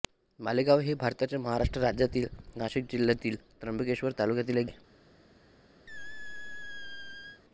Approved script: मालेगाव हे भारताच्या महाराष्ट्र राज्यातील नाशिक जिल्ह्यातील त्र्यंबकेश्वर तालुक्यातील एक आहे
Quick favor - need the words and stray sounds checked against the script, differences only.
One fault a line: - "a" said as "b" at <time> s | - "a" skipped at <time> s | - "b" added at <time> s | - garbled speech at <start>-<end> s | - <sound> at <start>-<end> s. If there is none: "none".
- squeak at 5.9-7.4 s